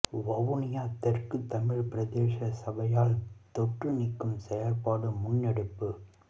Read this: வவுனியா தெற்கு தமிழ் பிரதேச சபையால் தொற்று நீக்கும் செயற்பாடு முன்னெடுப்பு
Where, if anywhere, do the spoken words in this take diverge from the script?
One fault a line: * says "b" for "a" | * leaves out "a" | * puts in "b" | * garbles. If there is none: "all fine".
all fine